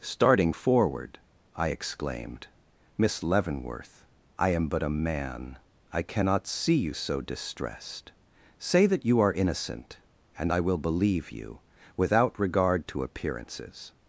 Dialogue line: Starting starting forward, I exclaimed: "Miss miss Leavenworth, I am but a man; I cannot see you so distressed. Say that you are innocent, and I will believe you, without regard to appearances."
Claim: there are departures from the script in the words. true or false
true